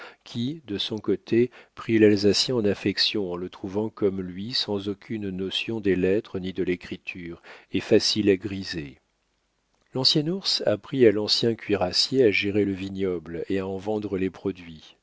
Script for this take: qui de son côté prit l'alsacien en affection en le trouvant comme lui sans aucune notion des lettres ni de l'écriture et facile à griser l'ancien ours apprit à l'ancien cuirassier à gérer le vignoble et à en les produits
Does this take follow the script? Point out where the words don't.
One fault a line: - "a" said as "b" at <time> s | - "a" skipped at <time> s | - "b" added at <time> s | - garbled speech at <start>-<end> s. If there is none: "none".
- "vendre" added at 13.8 s